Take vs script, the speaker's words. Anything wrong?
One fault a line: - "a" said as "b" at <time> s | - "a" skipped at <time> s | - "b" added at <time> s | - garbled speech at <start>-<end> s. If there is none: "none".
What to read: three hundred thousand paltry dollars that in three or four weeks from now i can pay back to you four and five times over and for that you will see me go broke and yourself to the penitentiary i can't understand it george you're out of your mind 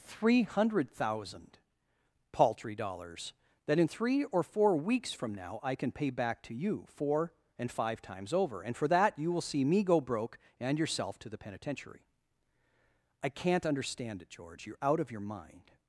none